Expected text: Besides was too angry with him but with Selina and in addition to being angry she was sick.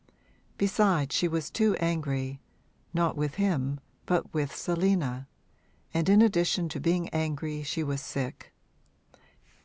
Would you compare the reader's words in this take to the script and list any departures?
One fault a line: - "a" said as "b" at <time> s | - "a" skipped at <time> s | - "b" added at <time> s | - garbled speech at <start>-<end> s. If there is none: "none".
- "she" added at 1.1 s
- "not" added at 2.9 s